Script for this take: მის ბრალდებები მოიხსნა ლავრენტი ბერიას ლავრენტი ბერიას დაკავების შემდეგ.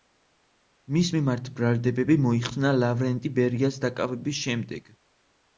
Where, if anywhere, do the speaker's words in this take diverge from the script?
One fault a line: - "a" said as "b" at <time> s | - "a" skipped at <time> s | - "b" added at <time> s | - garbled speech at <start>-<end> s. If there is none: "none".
- "მიმართ" added at 1.1 s
- "ლავრენტი ბერიას" skipped at 3.8 s